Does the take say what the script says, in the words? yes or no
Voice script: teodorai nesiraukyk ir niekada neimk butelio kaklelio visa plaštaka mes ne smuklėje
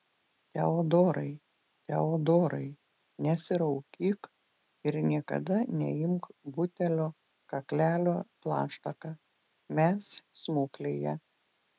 no